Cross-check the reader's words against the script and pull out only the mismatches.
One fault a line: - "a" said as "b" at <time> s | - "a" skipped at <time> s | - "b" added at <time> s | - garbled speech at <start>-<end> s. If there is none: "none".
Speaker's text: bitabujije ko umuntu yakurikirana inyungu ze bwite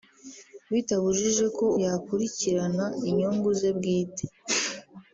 - "umuntu" skipped at 1.6 s